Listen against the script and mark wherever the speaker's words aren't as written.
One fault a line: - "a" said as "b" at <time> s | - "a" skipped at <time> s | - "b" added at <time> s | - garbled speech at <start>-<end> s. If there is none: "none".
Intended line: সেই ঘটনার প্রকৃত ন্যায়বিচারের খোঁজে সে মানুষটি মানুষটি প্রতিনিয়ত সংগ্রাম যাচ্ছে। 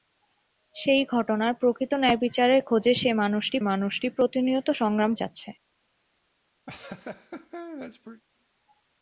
none